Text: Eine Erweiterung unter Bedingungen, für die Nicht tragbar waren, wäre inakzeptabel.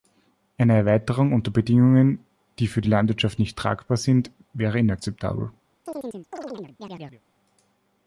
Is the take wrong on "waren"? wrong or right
wrong